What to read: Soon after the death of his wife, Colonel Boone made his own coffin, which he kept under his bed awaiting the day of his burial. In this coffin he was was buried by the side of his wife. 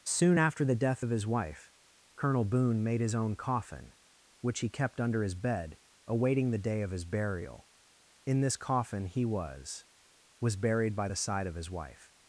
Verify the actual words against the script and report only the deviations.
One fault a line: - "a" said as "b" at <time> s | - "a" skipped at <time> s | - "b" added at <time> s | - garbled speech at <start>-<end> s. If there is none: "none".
none